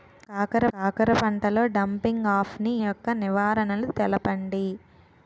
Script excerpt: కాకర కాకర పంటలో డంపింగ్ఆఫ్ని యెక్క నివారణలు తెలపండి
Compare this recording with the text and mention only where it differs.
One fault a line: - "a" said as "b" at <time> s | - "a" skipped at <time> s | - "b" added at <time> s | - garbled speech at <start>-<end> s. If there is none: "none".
none